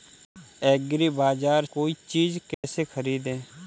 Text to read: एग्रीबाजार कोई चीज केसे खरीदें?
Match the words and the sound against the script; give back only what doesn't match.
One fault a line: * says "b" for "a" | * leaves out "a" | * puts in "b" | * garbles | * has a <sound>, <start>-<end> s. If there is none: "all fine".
* has a dropout, 2.5-2.6 s